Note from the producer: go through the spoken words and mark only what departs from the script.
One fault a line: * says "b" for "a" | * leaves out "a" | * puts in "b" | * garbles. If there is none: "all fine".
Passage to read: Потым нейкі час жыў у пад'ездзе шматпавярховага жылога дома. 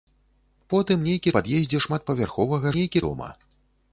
* leaves out "час жыў у"
* says "нейкі" for "жылога"